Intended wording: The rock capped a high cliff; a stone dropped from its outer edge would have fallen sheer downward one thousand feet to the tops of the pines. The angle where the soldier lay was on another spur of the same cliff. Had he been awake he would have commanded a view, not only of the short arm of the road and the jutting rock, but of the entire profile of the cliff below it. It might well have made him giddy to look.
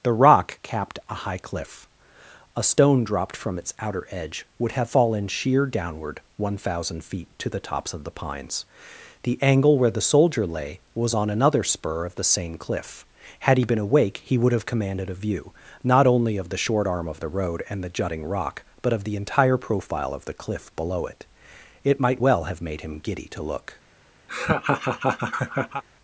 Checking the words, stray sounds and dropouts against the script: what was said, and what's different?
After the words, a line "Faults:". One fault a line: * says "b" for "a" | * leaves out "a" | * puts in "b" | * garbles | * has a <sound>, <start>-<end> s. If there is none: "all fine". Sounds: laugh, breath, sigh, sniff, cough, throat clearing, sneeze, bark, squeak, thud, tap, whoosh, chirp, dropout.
The rock capped a high cliff; a stone dropped from its outer edge would have fallen sheer downward one thousand feet to the tops of the pines. The angle where the soldier lay was on another spur of the same cliff. Had he been awake he would have commanded a view, not only of the short arm of the road and the jutting rock, but of the entire profile of the cliff below it. It might well have made him giddy to look.
Faults:
* has a laugh, 24.3-25.8 s